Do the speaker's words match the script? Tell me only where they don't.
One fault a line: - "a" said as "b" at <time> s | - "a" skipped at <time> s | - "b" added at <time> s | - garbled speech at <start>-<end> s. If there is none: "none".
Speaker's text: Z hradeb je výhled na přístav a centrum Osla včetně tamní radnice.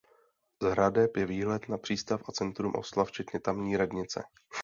none